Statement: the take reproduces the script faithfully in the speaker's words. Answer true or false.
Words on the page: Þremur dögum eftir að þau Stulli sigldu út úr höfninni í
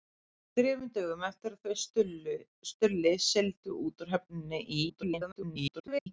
false